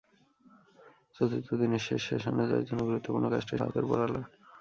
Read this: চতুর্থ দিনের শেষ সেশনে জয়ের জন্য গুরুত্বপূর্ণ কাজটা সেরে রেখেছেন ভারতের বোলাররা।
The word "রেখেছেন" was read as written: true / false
false